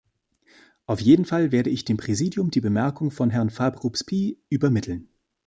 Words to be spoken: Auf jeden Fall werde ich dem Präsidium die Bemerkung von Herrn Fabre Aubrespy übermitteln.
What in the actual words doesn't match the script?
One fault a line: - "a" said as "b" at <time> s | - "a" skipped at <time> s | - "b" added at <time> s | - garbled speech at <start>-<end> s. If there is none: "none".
none